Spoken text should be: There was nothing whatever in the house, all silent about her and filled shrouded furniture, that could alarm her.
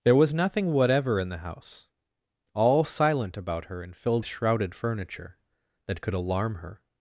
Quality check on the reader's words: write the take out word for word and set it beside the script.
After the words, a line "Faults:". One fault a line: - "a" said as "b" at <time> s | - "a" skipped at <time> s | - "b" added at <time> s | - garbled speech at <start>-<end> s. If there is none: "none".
There was nothing whatever in the house, all silent about her and filled shrouded furniture, that could alarm her.
Faults:
none